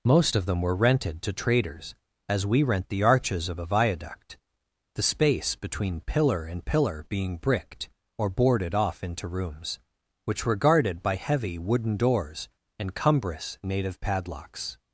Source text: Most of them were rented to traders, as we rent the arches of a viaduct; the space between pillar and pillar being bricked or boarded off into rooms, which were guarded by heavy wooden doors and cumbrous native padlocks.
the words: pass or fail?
pass